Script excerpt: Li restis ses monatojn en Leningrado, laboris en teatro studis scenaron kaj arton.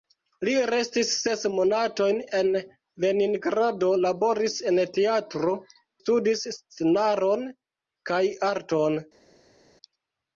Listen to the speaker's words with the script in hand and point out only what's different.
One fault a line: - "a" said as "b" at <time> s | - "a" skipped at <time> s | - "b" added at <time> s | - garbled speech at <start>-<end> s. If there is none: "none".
none